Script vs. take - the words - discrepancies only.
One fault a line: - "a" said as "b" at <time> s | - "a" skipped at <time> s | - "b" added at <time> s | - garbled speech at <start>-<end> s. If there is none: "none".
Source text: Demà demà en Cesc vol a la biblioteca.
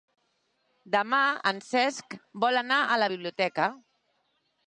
- "demà" skipped at 1.2 s
- "anar" added at 2.6 s